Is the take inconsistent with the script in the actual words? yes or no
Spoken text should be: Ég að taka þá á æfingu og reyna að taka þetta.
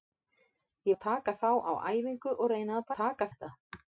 no